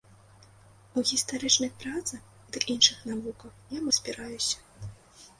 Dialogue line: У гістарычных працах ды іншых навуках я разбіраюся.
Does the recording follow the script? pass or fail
pass